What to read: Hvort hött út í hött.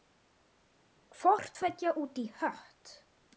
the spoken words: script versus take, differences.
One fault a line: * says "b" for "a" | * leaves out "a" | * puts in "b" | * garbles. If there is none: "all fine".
* says "tveggja" for "hött"